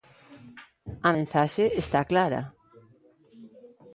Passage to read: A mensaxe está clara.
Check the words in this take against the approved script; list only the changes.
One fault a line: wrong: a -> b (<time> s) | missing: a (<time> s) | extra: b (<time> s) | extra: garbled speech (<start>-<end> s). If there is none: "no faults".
no faults